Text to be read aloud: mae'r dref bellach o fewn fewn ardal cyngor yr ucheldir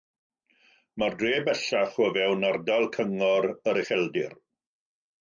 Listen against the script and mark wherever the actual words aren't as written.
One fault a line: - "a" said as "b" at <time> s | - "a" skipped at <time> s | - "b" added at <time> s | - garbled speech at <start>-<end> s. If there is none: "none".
- "fewn" skipped at 2.5 s